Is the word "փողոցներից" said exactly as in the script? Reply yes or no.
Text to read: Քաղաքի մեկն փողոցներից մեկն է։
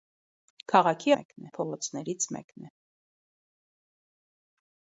yes